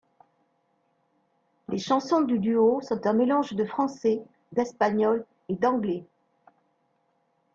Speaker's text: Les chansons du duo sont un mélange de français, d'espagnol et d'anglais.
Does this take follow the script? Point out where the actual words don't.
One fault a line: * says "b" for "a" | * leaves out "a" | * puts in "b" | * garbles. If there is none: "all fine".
all fine